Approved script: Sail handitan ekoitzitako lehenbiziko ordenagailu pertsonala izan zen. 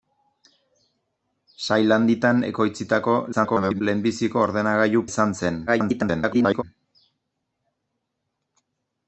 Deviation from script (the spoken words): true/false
true